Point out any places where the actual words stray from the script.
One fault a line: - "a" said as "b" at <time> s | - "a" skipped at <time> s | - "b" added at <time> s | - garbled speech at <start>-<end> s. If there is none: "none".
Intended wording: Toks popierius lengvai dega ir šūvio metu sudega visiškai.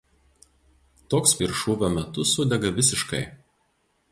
- "popierius lengvai dega" skipped at 1.3 s